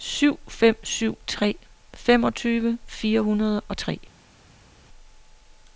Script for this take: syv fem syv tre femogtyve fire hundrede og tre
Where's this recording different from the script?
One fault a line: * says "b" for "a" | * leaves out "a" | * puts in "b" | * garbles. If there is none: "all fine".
all fine